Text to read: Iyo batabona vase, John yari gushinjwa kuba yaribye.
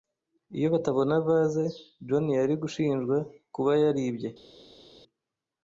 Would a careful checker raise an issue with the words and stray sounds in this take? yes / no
no